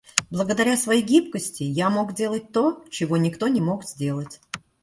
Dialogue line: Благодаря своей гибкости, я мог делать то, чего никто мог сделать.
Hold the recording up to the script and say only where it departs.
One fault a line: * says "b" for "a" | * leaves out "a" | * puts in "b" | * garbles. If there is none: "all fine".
* puts in "не"